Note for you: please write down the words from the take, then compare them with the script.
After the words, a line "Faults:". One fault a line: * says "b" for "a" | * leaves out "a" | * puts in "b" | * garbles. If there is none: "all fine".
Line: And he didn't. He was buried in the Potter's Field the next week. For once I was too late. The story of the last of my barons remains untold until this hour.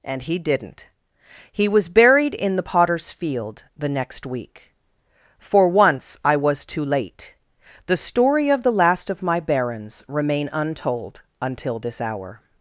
And he didn't. He was buried in the Potter's Field the next week. For once I was too late. The story of the last of my barons remain untold until this hour.
Faults:
* says "remain" for "remains"